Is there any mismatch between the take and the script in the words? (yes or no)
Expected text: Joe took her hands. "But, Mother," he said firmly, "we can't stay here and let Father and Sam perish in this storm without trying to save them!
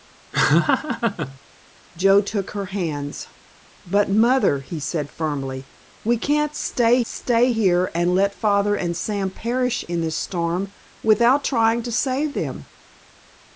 yes